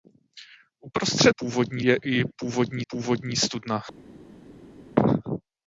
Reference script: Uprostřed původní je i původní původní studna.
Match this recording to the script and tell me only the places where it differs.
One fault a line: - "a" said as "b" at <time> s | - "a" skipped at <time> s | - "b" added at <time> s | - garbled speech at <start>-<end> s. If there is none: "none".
none